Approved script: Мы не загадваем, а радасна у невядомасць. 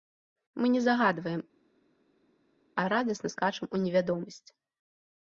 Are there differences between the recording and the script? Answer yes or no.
yes